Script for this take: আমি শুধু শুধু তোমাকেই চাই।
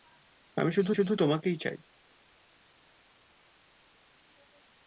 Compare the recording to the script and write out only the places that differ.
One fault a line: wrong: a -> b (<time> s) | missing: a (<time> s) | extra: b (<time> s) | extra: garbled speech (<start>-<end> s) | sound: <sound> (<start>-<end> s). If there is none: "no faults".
no faults